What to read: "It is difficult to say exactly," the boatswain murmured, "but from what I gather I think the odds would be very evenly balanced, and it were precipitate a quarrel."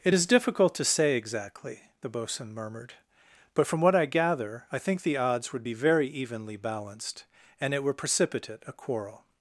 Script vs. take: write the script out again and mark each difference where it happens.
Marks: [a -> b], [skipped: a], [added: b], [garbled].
"It is difficult to say exactly," the boatswain murmured, "but from what I gather I think the odds would be very evenly balanced, and it were precipitate a quarrel."